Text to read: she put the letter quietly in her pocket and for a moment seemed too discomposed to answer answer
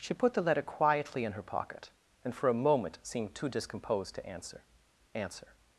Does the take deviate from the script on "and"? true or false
false